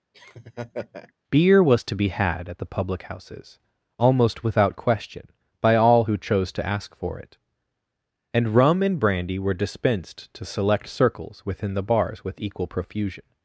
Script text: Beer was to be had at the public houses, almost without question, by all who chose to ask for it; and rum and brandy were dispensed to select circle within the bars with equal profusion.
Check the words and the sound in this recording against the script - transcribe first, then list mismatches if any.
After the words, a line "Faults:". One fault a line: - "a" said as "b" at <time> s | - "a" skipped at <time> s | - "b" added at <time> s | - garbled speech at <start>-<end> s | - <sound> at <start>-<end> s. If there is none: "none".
Beer was to be had at the public houses, almost without question, by all who chose to ask for it; and rum and brandy were dispensed to select circles within the bars with equal profusion.
Faults:
- laugh at 0.1-1.1 s
- "circle" said as "circles" at 10.9 s